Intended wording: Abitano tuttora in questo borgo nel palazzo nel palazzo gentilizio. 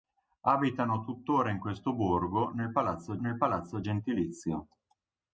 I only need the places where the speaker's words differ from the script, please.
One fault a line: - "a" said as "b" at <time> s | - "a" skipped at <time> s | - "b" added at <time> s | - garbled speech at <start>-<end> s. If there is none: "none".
none